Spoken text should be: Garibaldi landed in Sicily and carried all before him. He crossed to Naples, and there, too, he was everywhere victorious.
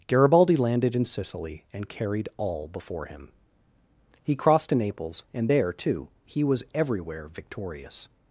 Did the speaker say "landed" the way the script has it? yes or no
yes